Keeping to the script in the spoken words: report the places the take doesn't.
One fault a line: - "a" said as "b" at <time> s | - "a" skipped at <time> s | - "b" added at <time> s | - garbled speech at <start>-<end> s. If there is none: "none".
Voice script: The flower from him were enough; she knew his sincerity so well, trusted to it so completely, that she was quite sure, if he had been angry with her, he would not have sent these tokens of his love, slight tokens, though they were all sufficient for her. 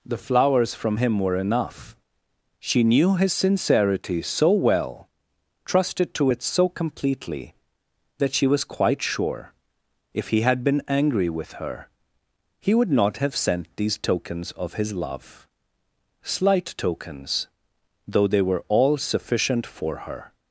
- "flower" said as "flowers" at 0.2 s